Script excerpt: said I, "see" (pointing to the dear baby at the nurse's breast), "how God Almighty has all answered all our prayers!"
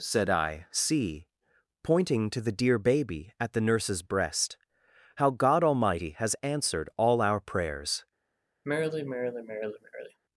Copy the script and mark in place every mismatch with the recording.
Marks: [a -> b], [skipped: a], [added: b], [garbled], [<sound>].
said I, "see" (pointing to the dear baby at the nurse's breast), "how God Almighty has [skipped: all] answered all our prayers!" [sigh]